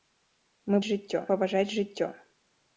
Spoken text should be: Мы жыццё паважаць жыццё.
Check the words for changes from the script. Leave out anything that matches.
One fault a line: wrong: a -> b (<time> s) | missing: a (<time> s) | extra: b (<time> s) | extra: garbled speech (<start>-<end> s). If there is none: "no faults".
no faults